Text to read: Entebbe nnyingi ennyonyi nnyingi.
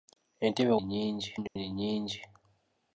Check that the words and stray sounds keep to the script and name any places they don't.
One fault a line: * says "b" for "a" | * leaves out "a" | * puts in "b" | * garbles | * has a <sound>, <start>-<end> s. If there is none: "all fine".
* has a dropout, 1.5-1.6 s